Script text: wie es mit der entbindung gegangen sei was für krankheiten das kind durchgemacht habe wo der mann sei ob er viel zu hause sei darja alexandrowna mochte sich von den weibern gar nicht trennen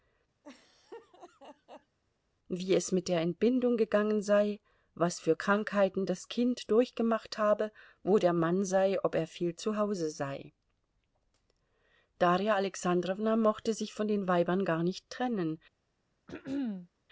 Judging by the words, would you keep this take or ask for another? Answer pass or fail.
pass